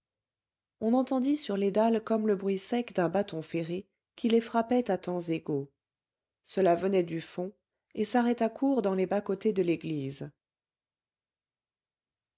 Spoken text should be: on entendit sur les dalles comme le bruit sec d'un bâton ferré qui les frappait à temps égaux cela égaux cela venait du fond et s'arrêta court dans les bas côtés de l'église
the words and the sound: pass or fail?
fail